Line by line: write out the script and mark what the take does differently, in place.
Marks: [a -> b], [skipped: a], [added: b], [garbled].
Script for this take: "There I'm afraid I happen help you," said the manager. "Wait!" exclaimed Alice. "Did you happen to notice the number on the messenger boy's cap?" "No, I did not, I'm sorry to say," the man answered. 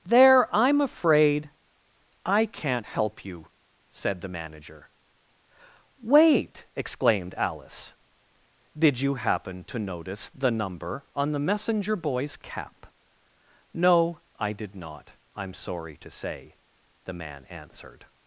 "There I'm afraid I [happen -> can't] help you," said the manager. "Wait!" exclaimed Alice. "Did you happen to notice the number on the messenger boy's cap?" "No, I did not, I'm sorry to say," the man answered.